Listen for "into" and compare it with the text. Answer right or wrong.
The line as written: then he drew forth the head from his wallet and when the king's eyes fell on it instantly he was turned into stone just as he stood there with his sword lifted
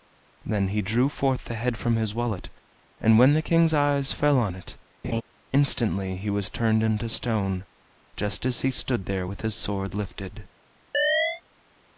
right